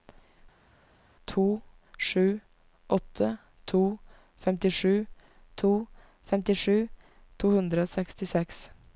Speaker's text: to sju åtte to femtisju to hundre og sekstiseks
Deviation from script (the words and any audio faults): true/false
true